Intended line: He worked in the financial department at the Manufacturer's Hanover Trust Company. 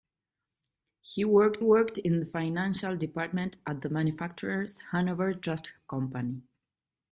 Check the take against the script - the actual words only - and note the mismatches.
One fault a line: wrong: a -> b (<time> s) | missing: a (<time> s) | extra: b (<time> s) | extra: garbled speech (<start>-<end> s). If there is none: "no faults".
extra: worked (1.6 s)